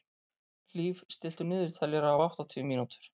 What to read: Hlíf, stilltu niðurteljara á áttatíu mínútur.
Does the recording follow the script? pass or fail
pass